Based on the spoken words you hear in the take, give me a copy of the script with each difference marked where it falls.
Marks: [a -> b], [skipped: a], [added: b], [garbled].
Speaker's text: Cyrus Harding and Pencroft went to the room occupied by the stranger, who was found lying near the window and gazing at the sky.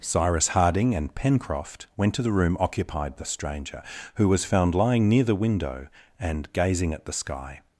Cyrus Harding and Pencroft went to the room occupied [skipped: by] the stranger, who was found lying near the window and gazing at the sky.